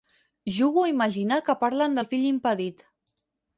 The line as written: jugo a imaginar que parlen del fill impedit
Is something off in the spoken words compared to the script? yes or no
no